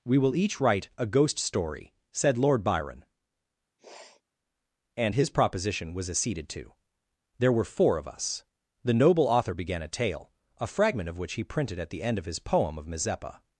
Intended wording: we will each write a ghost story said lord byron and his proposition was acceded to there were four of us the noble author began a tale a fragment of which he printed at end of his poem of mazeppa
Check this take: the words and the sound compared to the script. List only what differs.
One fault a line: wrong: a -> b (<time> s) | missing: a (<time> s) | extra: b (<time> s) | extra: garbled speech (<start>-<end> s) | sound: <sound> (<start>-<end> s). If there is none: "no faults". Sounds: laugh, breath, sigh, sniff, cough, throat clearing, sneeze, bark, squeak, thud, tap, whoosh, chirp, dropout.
sound: sniff (3.8-4.2 s)
extra: the (11.9 s)